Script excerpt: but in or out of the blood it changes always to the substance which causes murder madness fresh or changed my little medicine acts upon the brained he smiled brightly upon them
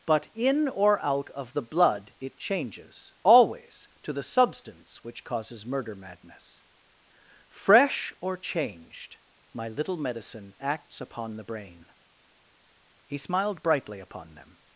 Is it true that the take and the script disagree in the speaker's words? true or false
true